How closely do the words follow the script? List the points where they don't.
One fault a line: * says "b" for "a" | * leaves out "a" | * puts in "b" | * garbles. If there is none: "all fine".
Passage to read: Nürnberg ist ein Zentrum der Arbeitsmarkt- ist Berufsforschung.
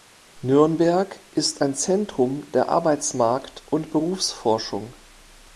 * says "und" for "ist"